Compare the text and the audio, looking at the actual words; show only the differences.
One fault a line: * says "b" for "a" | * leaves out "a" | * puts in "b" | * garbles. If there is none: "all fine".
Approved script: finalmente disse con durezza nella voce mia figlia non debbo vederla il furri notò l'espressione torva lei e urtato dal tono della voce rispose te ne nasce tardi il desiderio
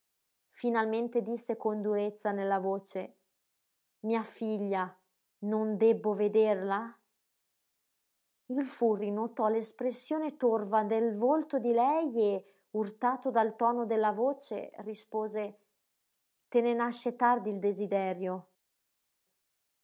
* puts in "del volto di"